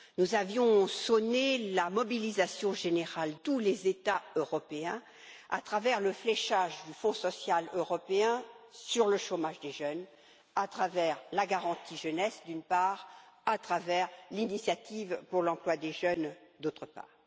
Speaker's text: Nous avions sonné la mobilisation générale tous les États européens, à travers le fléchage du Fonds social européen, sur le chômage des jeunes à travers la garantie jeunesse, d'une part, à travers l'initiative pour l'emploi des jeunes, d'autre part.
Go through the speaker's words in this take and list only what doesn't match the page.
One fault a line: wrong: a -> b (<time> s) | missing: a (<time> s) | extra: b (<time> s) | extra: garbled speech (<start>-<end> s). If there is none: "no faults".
no faults